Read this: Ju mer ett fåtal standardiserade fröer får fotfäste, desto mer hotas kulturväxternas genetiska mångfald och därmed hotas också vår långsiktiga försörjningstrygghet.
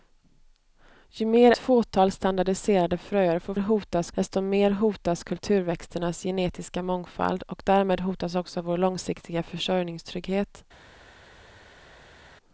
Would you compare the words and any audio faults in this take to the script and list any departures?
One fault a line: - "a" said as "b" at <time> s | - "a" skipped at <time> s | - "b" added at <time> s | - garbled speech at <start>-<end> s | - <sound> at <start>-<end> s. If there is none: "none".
- "ett" skipped at 1.5 s
- "fotfäste" said as "hotas" at 3.6 s